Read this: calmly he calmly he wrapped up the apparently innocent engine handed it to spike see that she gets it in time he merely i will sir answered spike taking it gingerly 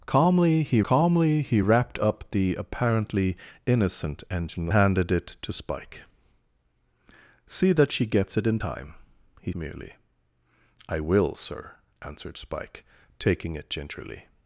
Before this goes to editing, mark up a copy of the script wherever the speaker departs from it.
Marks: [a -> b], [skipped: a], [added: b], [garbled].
calmly he calmly he wrapped up the apparently innocent engine handed it to spike see that she gets it in time he merely i will sir answered spike taking it gingerly